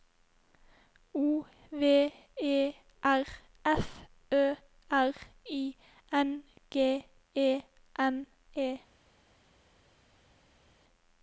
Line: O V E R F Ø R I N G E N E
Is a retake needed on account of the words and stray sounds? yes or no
no